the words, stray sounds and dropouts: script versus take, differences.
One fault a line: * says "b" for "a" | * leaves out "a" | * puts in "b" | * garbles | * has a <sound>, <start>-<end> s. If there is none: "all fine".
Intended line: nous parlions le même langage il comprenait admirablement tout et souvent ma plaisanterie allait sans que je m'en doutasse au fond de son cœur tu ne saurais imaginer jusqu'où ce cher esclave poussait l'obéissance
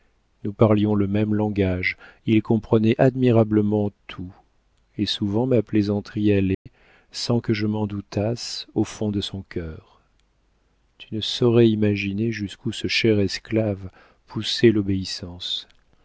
* has a dropout, 6.5-6.7 s